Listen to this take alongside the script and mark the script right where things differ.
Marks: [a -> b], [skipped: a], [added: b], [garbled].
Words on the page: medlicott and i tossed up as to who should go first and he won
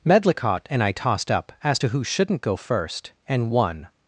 medlicott and i tossed up as to who [should -> shouldn't] go first and [skipped: he] won